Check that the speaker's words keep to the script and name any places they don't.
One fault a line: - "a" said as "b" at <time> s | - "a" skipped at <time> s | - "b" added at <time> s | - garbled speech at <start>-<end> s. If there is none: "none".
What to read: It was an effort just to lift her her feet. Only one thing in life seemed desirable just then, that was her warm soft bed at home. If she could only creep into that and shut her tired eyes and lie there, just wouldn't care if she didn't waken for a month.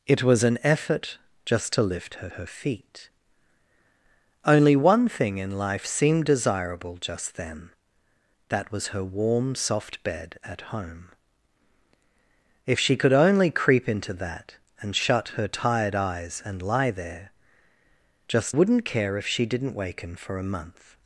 none